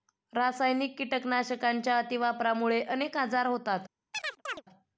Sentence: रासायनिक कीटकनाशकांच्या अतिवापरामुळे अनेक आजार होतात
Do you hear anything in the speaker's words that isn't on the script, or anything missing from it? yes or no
no